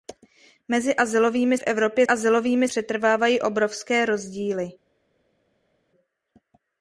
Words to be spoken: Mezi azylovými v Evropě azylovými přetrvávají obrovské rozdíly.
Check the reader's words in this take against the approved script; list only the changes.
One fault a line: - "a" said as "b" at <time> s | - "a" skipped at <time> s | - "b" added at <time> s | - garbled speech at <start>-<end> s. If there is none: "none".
none